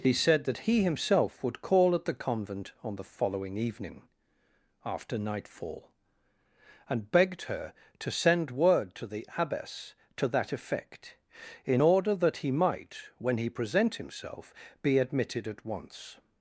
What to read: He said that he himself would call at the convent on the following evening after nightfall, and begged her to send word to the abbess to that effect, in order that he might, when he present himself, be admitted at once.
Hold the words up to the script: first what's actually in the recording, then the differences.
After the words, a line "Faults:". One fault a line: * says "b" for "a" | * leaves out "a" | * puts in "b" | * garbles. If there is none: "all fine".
He said that he himself would call at the convent on the following evening after nightfall, and begged her to send word to the abbess to that effect, in order that he might, when he present himself, be admitted at once.
Faults:
all fine